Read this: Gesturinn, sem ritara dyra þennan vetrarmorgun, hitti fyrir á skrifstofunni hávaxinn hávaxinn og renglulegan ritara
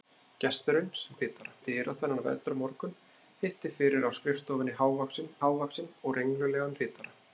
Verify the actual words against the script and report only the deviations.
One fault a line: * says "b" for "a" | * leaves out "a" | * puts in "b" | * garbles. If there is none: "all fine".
all fine